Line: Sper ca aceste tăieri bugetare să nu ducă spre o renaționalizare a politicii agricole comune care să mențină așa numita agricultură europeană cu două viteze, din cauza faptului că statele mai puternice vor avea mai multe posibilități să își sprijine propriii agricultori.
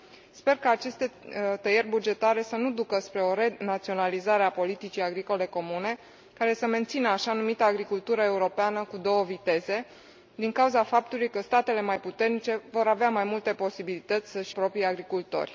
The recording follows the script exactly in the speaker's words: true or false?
false